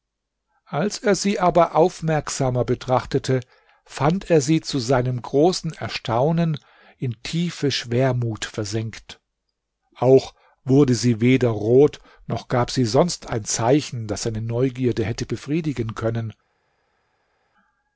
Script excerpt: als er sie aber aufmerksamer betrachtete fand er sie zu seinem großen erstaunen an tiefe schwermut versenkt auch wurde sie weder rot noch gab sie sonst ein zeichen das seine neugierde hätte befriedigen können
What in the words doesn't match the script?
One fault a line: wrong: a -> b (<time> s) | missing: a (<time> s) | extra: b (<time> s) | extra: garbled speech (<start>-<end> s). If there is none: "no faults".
wrong: an -> in (7.0 s)